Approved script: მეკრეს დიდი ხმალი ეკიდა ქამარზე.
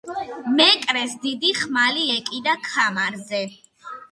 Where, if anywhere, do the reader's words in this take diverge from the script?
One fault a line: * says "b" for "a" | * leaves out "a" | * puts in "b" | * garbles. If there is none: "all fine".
all fine